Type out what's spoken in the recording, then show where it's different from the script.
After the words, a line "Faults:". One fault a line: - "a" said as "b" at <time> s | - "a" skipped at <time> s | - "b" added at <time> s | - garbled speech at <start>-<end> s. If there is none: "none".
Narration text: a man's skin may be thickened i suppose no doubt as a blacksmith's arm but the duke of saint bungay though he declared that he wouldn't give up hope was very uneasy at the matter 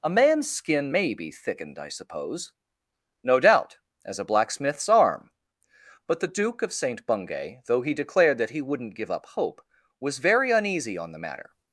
a man's skin may be thickened i suppose no doubt as a blacksmith's arm but the duke of saint bungay though he declared that he wouldn't give up hope was very uneasy on the matter
Faults:
- "at" said as "on" at 11.0 s